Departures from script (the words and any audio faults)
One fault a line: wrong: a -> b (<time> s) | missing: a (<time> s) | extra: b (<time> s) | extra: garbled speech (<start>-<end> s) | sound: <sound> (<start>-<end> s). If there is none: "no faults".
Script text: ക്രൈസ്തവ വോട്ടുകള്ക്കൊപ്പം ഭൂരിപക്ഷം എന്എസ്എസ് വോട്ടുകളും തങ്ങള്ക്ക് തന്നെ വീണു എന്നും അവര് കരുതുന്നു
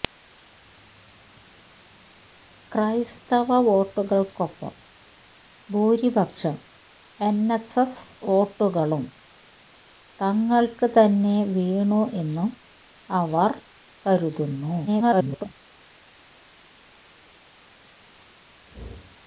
extra: garbled speech (14.9-15.5 s)